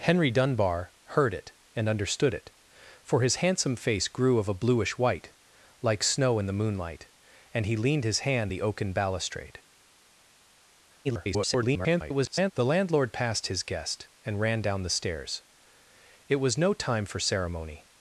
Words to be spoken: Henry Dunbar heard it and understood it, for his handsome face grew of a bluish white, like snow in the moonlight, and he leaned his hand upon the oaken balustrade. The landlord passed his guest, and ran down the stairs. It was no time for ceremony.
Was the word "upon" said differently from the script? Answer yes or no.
yes